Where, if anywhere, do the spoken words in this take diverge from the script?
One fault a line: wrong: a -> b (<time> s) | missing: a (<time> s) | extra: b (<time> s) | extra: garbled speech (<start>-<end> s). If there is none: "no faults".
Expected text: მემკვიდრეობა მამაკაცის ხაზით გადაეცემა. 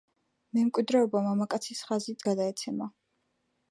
no faults